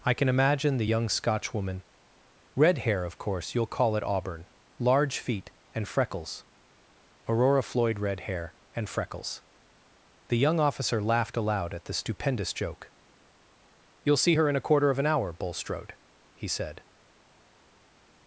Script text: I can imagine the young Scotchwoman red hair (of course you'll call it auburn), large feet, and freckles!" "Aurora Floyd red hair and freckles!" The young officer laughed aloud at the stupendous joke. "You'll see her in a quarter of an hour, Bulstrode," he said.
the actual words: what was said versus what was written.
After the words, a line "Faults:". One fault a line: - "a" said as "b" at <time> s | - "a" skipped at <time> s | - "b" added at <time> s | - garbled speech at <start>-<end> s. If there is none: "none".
I can imagine the young Scotchwoman red hair (of course you'll call it auburn), large feet, and freckles!" "Aurora Floyd red hair and freckles!" The young officer laughed aloud at the stupendous joke. "You'll see her in a quarter of an hour, Bulstrode," he said.
Faults:
none